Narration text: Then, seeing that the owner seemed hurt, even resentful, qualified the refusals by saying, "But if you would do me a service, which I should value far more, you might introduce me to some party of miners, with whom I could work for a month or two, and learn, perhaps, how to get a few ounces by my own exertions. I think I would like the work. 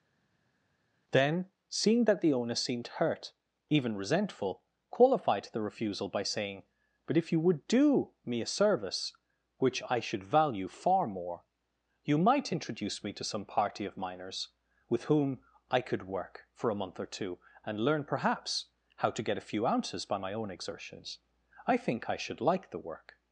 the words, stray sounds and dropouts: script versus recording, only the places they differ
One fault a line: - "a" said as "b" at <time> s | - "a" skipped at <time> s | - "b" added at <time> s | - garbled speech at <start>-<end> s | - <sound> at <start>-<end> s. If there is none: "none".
- "refusals" said as "refusal" at 5.6 s
- "would" said as "should" at 22.2 s